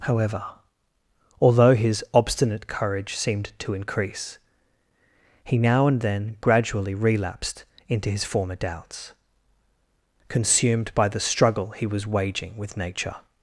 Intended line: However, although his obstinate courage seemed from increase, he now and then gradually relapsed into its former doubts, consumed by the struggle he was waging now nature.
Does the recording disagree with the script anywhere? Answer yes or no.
yes